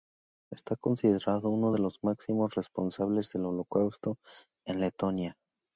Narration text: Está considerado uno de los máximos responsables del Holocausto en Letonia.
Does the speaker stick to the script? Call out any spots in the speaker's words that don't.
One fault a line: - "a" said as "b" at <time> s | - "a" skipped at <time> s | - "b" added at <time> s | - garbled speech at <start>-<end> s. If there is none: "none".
none